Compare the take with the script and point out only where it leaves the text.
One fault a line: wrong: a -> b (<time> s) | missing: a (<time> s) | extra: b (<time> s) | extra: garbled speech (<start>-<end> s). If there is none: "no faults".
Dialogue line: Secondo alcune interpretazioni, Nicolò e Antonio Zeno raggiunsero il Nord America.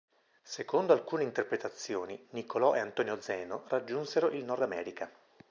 no faults